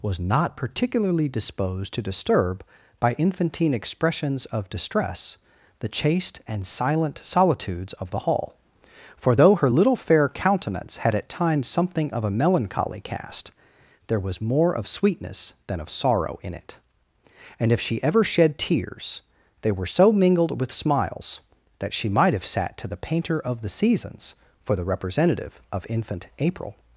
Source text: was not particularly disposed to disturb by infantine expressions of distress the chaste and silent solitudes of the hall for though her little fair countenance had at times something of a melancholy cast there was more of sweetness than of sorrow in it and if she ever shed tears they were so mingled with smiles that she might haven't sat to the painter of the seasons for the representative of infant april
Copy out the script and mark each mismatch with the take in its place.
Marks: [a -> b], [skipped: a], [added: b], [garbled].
was not particularly disposed to disturb by infantine expressions of distress the chaste and silent solitudes of the hall for though her little fair countenance had at times something of a melancholy cast there was more of sweetness than of sorrow in it and if she ever shed tears they were so mingled with smiles that she might [haven't -> have] sat to the painter of the seasons for the representative of infant april